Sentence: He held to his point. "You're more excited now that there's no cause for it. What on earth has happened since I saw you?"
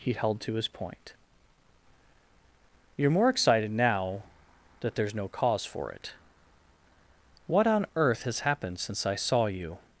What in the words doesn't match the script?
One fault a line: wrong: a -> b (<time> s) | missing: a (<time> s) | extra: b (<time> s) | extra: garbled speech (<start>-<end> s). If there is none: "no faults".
no faults